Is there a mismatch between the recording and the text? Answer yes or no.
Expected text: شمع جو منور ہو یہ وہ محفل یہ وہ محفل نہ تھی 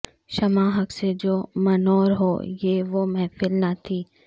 yes